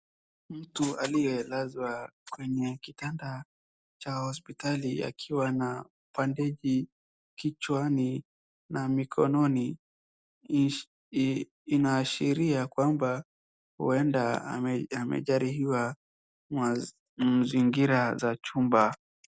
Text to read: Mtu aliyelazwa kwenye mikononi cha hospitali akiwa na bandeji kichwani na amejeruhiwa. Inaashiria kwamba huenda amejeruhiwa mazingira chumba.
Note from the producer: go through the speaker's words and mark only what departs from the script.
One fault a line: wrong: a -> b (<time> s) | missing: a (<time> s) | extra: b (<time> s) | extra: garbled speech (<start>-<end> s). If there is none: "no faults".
wrong: mikononi -> kitanda (2.8 s)
wrong: amejeruhiwa -> mikononi (8.9 s)
extra: za (18.1 s)